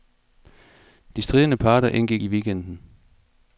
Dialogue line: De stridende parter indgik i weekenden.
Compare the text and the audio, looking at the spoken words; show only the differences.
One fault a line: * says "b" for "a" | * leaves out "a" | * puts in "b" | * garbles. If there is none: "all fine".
all fine